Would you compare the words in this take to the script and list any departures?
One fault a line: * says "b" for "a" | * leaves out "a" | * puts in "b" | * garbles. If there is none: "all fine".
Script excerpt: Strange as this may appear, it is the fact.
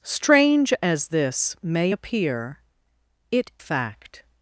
* leaves out "is the"